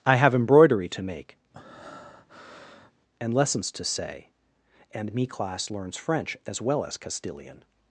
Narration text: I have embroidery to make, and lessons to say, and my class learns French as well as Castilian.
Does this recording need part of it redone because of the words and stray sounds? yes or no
yes